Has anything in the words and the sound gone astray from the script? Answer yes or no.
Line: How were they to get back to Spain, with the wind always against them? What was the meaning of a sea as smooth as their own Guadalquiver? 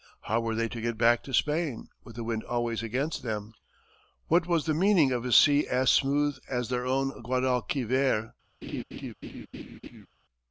yes